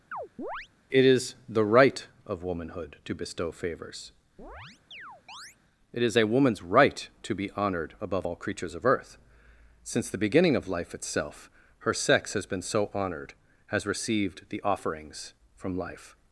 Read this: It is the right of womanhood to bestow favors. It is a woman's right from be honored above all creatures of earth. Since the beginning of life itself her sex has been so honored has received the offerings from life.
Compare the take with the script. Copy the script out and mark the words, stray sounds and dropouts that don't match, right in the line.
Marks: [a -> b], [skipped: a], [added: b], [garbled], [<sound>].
[chirp] It is the right of womanhood to bestow favors. [chirp] It is a woman's right [from -> to] be honored above all creatures of earth. Since the beginning of life itself her sex has been so honored has received the offerings from life.